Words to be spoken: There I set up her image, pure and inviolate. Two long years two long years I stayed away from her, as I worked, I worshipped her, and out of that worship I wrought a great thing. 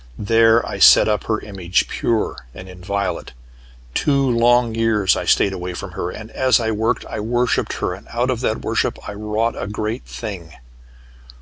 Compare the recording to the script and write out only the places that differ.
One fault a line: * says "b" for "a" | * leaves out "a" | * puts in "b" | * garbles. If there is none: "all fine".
* leaves out "two long years"
* puts in "and"